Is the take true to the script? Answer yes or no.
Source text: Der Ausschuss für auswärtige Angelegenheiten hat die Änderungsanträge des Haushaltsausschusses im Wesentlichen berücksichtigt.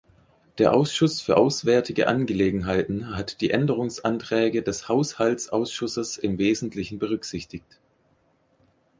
yes